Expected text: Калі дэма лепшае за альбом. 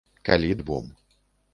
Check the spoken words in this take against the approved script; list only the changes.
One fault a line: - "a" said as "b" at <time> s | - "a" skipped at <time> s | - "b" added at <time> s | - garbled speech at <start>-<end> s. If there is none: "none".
- "дэма лепшае за" skipped at 0.5 s